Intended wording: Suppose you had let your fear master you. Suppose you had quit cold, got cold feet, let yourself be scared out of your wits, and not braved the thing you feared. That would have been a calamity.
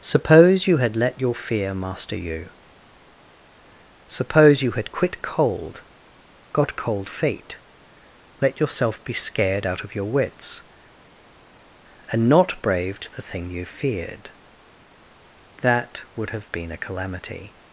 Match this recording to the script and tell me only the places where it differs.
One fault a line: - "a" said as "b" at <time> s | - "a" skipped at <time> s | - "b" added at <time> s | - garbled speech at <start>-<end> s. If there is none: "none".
none